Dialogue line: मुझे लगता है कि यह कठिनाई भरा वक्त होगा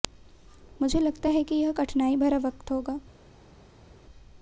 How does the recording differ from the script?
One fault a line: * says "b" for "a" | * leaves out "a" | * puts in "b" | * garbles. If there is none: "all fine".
all fine